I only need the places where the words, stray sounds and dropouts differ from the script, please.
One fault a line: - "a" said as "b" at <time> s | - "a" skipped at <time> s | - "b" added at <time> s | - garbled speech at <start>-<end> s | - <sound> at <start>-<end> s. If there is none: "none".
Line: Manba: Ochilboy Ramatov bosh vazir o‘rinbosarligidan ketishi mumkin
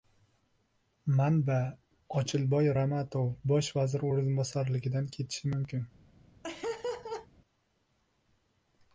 - laugh at 6.4-7.3 s